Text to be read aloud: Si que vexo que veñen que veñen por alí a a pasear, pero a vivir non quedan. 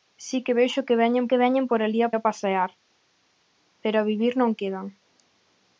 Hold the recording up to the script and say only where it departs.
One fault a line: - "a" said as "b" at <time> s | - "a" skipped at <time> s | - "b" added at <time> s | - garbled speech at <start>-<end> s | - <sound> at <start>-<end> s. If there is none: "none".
none